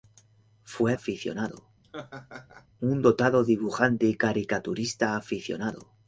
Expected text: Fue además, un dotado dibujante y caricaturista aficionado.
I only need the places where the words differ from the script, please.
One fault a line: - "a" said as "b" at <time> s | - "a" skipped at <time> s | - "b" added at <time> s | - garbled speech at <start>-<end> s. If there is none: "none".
- "además" said as "aficionado" at 0.9 s